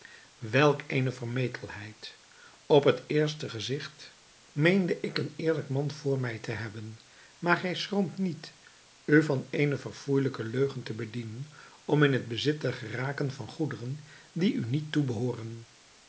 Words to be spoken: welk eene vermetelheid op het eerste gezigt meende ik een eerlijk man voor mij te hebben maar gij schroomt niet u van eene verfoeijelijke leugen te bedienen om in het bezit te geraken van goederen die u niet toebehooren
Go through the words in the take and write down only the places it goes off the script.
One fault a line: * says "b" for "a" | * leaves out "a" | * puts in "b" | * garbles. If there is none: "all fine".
all fine